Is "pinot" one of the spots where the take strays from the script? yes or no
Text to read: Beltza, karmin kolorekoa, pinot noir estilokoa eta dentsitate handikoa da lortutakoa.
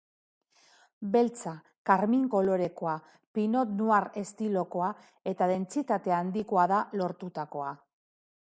no